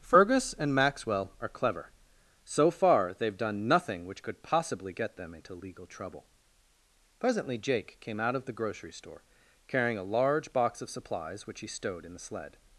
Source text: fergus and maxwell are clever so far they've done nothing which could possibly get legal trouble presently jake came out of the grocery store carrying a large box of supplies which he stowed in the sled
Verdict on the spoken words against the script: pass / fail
fail